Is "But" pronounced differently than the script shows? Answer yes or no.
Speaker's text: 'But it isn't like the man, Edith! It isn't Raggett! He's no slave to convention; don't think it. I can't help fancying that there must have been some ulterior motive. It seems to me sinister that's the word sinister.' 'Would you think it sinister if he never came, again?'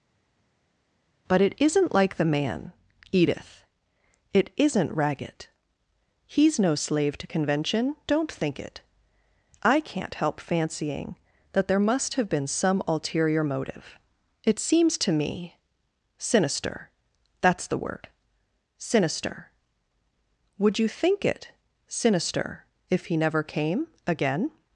no